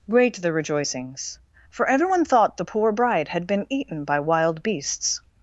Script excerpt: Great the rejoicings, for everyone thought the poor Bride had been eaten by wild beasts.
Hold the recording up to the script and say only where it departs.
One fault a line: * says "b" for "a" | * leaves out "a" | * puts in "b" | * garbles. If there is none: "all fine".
all fine